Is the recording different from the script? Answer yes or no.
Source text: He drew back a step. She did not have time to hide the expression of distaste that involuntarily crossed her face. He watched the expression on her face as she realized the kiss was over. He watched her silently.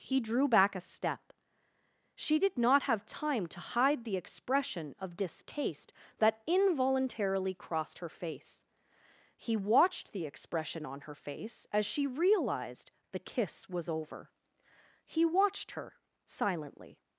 no